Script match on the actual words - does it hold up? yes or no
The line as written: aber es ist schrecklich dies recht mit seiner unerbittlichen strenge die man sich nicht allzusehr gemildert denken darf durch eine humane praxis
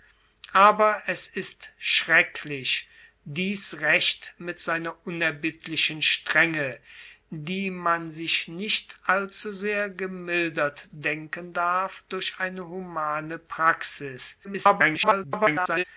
no